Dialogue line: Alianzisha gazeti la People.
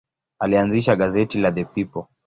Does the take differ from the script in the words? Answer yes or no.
yes